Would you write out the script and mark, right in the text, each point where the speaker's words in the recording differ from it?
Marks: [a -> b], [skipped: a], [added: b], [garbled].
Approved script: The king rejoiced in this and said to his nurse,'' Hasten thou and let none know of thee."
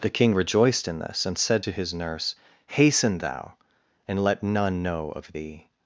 The king rejoiced in this and said to his nurse,'' Hasten thou and let none know of thee."